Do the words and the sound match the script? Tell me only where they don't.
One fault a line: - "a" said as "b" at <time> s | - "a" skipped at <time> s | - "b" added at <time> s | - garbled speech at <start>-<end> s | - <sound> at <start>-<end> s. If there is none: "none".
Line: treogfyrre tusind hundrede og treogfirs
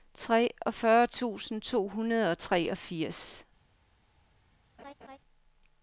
- "to" added at 1.6 s
- laugh at 4.8-5.2 s